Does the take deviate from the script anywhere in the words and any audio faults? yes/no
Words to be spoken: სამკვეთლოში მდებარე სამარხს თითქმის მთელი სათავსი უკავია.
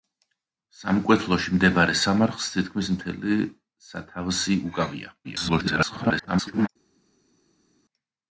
yes